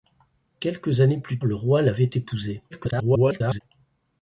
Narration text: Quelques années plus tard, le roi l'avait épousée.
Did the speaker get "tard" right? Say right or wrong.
wrong